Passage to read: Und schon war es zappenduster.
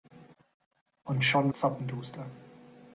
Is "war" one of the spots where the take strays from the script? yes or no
yes